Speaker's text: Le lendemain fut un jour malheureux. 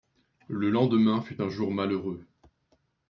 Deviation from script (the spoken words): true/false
false